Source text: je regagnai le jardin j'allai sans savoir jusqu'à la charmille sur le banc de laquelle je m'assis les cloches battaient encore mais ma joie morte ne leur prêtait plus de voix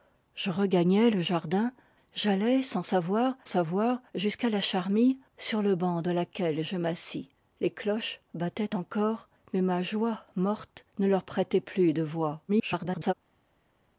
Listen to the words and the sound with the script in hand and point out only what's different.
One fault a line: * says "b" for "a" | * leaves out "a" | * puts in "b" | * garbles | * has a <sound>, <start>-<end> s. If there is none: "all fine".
* puts in "savoir"
* garbles